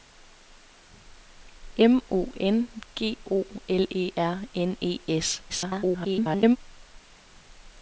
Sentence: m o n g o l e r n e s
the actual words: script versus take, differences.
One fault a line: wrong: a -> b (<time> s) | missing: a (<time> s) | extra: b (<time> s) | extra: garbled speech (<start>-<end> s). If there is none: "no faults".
extra: garbled speech (5.5-6.6 s)